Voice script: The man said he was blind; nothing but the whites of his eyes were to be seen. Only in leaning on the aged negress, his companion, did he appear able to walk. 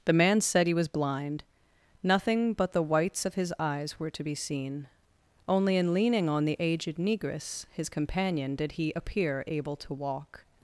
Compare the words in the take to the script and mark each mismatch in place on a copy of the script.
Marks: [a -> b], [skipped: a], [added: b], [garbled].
The man said he was blind; nothing but the whites of his eyes were to be seen. Only in leaning on the aged negress, his companion, did he appear able to walk.